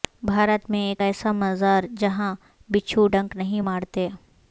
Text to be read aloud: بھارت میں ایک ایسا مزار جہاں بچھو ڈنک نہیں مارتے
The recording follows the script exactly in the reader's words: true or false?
true